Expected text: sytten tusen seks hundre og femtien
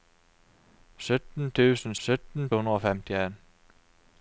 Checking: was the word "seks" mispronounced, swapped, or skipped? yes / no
yes